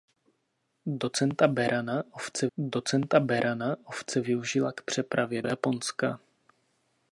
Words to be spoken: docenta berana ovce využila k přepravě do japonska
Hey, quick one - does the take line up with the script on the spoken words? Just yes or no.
no